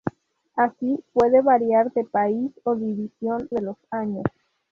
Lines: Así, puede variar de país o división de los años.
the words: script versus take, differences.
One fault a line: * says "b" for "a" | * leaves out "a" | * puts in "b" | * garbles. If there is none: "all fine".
all fine